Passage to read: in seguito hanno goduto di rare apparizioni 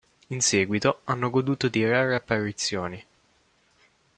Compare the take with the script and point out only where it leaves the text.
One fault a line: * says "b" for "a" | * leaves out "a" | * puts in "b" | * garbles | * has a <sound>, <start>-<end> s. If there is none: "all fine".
all fine